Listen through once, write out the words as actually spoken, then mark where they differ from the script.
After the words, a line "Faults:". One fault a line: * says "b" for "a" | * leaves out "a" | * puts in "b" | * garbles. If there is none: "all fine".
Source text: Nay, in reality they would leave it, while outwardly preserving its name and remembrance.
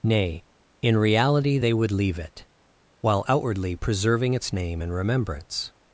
Nay, in reality they would leave it, while outwardly preserving its name and remembrance.
Faults:
all fine